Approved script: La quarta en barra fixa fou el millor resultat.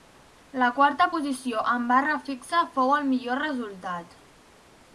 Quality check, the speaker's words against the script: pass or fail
fail